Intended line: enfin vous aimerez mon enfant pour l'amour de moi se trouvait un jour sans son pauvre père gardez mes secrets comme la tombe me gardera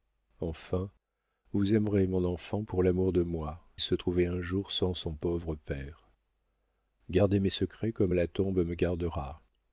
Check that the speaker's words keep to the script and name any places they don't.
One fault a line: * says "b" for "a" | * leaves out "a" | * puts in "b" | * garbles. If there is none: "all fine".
all fine